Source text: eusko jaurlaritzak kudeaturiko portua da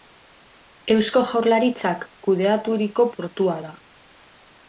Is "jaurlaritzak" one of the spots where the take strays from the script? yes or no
no